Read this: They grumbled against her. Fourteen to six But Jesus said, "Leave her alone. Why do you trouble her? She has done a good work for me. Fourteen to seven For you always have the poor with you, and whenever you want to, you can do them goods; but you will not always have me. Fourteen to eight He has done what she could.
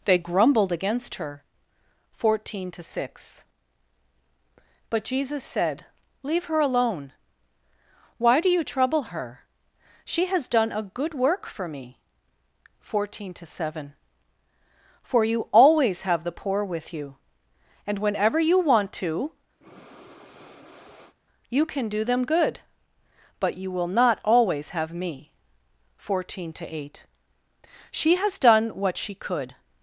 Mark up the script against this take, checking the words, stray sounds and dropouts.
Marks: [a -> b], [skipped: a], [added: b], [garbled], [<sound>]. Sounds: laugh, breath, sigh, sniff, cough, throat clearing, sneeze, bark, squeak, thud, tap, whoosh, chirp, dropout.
They grumbled against her. Fourteen to six But Jesus said, "Leave her alone. Why do you trouble her? She has done a good work for me. Fourteen to seven For you always have the poor with you, and whenever you want to, [breath] you can do them [goods; -> good] but you will not always have me. Fourteen to eight [He -> She] has done what she could.